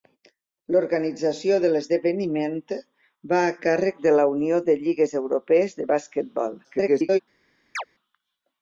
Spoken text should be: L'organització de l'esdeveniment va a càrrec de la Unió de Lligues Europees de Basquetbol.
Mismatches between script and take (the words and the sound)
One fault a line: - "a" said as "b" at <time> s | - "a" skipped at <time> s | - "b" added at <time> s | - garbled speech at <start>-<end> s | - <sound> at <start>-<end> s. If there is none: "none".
- garbled speech at 6.6-7.2 s
- chirp at 7.8-7.8 s